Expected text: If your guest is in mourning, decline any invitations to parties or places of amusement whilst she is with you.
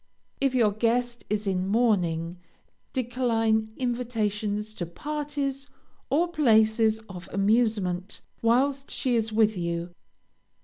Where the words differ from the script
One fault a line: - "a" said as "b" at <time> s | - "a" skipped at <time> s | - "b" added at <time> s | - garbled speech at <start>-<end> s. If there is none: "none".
- "any" skipped at 3.7 s